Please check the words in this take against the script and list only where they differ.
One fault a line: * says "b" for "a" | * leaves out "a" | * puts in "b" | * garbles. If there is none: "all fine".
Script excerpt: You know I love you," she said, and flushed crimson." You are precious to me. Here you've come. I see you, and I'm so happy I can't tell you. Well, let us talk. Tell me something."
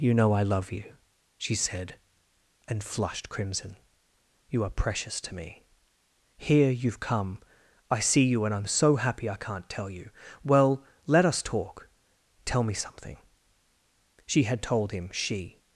* puts in "She had told him she"